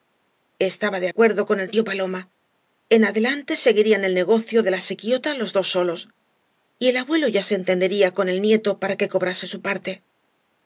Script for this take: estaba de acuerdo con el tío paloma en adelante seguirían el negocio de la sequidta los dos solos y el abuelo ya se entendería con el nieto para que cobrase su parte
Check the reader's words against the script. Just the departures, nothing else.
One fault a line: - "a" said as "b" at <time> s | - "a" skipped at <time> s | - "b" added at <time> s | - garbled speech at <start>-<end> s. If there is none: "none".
none